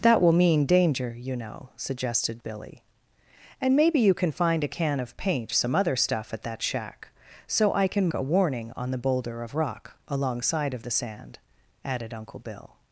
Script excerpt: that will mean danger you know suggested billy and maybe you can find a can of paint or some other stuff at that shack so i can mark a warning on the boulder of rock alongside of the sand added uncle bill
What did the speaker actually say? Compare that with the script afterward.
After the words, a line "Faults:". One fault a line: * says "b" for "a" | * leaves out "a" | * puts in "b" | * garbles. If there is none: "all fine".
that will mean danger you know suggested billy and maybe you can find a can of paint some other stuff at that shack so i can a warning on the boulder of rock alongside of the sand added uncle bill
Faults:
* leaves out "or"
* leaves out "mark"